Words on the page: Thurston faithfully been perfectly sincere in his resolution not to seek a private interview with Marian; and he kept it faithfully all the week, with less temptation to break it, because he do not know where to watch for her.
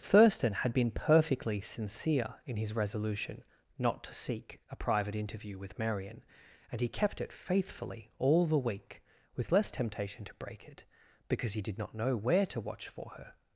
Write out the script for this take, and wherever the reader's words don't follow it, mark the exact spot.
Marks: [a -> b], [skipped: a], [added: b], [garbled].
Thurston [faithfully -> had] been perfectly sincere in his resolution not to seek a private interview with Marian; and he kept it faithfully all the week, with less temptation to break it, because he [do -> did] not know where to watch for her.